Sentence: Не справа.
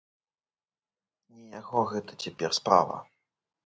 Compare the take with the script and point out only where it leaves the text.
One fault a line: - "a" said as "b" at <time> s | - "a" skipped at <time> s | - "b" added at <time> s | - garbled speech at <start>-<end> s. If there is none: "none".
- "яго гэта цяпер" added at 1.6 s